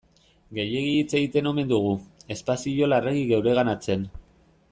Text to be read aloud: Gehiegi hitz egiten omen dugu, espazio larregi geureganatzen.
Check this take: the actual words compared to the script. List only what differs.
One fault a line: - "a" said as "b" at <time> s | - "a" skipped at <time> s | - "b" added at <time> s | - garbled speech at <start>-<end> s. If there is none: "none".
none